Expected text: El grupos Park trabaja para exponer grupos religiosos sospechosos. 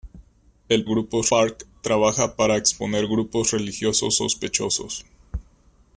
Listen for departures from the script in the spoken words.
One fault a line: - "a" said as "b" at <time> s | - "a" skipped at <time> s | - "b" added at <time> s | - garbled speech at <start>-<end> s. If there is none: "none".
none